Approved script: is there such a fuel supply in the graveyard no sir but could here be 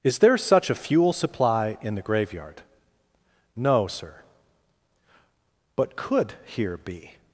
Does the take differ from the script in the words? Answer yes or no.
no